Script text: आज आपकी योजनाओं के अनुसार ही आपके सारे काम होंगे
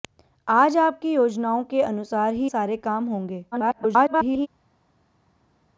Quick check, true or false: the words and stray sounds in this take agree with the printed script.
false